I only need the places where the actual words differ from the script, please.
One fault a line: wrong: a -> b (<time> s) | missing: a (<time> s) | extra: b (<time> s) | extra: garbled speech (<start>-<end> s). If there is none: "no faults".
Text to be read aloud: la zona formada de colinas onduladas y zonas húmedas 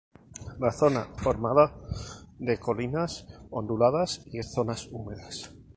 no faults